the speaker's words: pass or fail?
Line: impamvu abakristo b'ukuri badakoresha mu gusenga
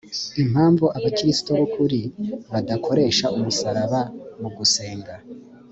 fail